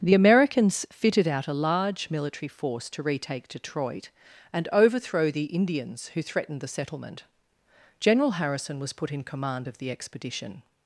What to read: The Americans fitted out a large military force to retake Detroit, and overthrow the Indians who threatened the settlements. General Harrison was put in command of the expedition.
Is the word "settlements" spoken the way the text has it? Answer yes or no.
no